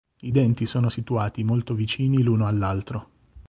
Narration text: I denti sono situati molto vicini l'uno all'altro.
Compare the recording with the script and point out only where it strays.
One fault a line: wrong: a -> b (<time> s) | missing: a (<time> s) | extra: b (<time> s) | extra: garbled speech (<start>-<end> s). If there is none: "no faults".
no faults